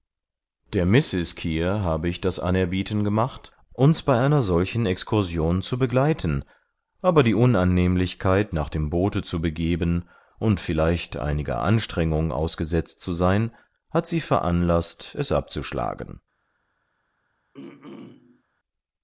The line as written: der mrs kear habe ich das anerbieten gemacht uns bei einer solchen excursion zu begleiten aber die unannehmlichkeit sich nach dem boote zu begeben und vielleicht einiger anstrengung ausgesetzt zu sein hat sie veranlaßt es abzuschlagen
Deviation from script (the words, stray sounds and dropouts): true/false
true